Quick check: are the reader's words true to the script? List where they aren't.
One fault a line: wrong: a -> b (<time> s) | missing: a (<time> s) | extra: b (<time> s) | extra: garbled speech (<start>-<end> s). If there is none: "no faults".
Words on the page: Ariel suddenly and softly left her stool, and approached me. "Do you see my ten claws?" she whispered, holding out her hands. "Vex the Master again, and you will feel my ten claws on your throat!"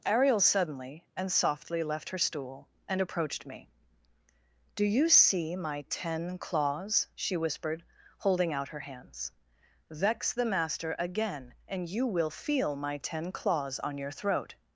no faults